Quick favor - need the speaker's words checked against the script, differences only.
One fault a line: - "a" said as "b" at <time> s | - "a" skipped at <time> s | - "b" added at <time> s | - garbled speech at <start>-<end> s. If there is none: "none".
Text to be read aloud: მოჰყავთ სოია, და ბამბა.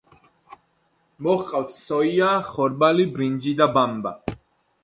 - "ხორბალი ბრინჯი" added at 2.5 s